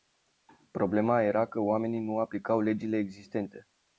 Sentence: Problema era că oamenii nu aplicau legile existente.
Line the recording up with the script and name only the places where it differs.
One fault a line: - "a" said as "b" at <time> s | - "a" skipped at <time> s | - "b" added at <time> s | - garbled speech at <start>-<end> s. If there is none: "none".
none